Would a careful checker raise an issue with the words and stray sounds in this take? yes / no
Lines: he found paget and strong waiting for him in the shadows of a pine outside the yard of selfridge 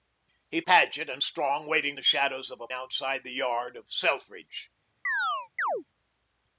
yes